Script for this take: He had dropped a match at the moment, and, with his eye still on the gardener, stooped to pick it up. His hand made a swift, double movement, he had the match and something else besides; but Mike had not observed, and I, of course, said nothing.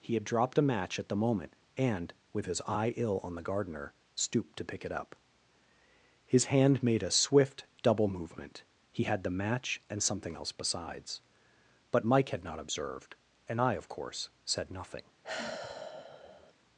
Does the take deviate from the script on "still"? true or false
true